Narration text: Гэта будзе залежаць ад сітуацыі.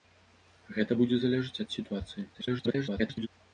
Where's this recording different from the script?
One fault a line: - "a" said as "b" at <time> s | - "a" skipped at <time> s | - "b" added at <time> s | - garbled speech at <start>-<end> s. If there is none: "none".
- garbled speech at 2.3-3.3 s